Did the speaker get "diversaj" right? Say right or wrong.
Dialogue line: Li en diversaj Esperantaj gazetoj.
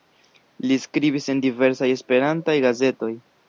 right